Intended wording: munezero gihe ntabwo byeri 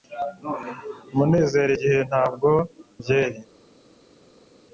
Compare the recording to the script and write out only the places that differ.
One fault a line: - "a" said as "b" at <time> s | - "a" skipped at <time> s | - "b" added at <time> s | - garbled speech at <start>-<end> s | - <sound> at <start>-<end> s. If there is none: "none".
none